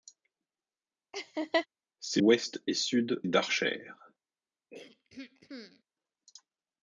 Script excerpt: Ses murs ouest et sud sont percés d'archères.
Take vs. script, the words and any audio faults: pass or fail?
fail